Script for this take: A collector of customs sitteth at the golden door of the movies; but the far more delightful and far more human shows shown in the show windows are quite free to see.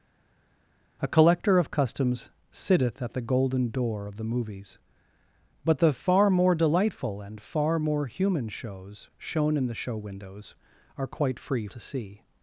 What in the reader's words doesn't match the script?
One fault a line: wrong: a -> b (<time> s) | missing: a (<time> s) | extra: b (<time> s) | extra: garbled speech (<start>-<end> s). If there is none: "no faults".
no faults